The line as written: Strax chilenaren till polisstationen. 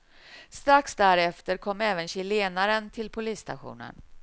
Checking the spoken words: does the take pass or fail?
fail